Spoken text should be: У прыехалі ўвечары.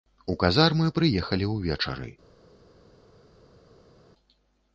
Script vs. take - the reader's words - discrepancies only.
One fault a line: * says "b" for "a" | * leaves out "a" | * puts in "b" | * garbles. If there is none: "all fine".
* puts in "казармы"